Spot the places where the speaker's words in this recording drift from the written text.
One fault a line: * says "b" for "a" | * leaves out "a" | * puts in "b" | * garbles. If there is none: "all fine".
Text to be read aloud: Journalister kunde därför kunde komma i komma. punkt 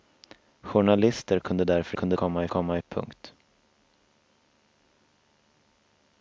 all fine